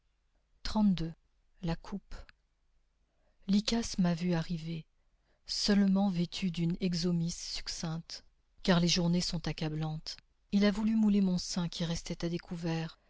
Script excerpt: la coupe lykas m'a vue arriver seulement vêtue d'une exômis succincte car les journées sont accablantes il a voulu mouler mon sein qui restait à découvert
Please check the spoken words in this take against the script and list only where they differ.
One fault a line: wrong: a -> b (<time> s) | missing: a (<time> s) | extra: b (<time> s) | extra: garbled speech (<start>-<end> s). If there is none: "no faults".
no faults